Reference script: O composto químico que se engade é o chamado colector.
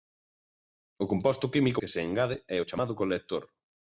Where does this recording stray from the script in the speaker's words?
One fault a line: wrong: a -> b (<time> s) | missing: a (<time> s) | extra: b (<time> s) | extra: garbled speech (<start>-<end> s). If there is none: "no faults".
no faults